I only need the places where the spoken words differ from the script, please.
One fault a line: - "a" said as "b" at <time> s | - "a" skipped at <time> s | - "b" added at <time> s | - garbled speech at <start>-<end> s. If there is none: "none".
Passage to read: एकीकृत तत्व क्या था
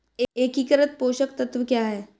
- "पोषक" added at 1.0 s
- "था" said as "है" at 1.9 s